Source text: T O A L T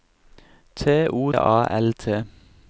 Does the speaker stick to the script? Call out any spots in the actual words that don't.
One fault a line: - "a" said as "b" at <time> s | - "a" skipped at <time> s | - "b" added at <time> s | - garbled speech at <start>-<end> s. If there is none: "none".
none